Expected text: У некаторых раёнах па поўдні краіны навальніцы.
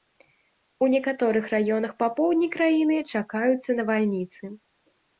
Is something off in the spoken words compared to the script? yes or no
yes